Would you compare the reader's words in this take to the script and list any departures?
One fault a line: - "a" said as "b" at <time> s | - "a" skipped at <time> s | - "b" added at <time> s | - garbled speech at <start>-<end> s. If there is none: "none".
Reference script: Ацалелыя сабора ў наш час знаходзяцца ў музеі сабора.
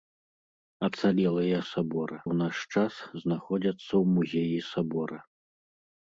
none